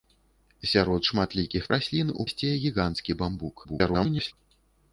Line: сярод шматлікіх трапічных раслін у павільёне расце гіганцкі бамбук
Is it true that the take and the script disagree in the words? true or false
true